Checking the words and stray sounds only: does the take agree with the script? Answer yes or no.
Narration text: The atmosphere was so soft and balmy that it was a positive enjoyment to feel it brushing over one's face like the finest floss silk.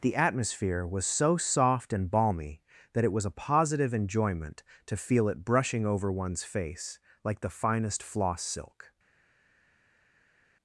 yes